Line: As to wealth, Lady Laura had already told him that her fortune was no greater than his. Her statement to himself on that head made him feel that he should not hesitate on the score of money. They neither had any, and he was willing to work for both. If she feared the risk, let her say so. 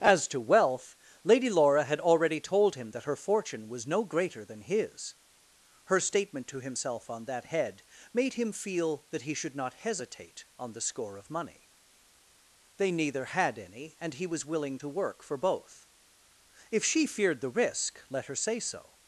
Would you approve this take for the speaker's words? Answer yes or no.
yes